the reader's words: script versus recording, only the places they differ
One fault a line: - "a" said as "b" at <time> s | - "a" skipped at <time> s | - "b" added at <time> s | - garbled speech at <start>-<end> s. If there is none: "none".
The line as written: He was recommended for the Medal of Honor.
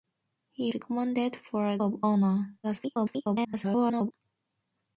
- "was" skipped at 0.7 s
- "the Medal" skipped at 1.8 s
- garbled speech at 2.6-4.1 s